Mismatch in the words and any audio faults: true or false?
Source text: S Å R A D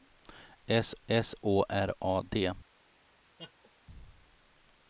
true